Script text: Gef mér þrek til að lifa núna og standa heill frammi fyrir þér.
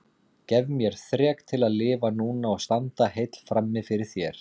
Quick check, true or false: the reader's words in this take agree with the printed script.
true